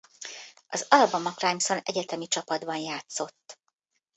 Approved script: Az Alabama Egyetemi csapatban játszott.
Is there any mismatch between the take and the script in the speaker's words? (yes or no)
yes